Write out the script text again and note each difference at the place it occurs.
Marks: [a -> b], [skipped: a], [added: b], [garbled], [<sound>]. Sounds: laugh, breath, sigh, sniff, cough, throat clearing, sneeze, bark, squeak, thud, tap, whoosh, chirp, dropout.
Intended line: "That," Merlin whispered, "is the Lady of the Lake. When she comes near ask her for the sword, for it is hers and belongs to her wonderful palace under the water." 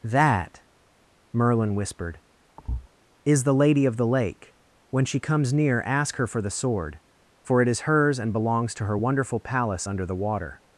"That," Merlin whispered, [thud] "is the Lady of the Lake. When she comes near ask her for the sword, for it is hers and belongs to her wonderful palace under the water."